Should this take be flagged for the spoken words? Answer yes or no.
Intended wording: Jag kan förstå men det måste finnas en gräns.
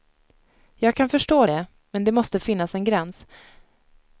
yes